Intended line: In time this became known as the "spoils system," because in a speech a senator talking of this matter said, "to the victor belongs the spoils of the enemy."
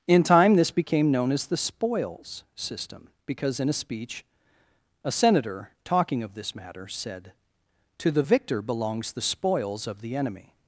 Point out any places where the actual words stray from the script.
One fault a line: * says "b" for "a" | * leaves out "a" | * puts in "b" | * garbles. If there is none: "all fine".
all fine